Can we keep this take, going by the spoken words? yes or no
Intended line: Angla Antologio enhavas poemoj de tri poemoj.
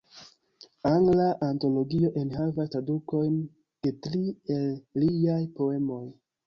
no